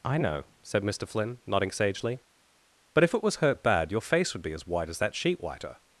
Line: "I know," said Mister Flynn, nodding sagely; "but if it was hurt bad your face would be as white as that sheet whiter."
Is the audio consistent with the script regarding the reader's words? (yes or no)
yes